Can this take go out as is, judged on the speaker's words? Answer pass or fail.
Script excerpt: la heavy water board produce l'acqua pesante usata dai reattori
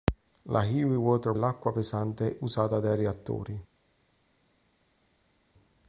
fail